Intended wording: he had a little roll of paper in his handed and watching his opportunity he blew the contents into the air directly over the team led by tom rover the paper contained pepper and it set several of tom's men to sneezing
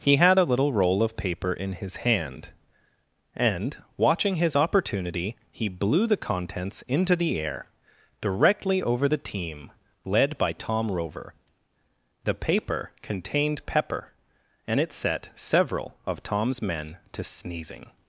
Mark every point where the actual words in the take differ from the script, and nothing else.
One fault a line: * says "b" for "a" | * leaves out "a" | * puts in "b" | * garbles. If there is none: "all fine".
* says "hand" for "handed"